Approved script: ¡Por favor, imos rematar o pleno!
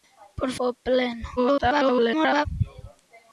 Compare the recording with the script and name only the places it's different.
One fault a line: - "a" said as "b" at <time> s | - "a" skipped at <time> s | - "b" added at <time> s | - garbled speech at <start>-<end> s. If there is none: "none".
- "favor imos rematar" skipped at 0.5 s
- garbled speech at 1.4-2.5 s